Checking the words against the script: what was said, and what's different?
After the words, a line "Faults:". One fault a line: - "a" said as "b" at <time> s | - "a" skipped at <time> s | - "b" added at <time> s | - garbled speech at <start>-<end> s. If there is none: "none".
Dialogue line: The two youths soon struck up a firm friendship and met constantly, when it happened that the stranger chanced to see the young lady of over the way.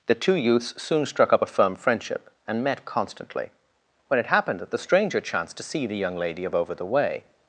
The two youths soon struck up a firm friendship and met constantly, when it happened that the stranger chanced to see the young lady of over the way.
Faults:
none